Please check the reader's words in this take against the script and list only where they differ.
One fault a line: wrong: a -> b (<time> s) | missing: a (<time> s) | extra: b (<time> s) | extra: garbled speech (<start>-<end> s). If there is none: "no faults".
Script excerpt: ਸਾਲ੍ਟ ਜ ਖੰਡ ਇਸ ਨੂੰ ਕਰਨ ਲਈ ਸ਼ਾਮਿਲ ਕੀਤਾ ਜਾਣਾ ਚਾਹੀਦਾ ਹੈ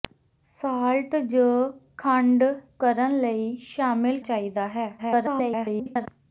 missing: ਇਸ ਨੂੰ (2.4 s)
missing: ਕੀਤਾ ਜਾਣਾ (4.2 s)
extra: garbled speech (5.0-6.1 s)